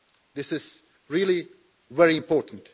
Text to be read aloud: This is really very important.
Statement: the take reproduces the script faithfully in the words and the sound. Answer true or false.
true